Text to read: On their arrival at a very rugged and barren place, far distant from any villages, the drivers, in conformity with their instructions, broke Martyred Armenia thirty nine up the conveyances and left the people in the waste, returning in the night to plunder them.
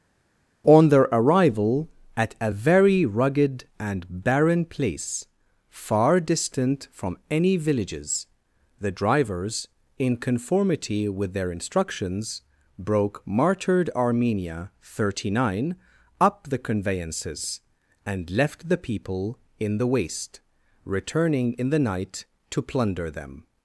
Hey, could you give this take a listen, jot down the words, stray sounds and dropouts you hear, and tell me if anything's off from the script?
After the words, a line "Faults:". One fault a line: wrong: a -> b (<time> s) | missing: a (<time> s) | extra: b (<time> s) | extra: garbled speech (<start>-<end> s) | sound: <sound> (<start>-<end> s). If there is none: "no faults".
On their arrival at a very rugged and barren place, far distant from any villages, the drivers, in conformity with their instructions, broke Martyred Armenia thirty nine up the conveyances and left the people in the waste, returning in the night to plunder them.
Faults:
no faults